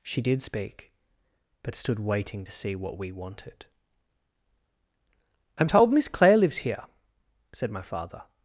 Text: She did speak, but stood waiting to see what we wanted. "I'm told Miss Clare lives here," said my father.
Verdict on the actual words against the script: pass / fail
pass